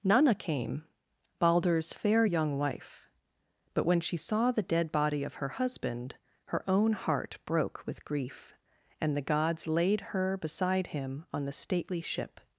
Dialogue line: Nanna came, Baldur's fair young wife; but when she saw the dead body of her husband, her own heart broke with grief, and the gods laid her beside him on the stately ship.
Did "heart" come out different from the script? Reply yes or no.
no